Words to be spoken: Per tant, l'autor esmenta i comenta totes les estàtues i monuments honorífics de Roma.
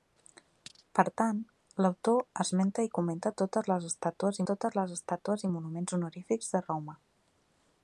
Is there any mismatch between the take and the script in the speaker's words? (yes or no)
yes